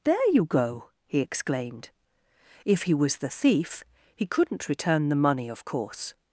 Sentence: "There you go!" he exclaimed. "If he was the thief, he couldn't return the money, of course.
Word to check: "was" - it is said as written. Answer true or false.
true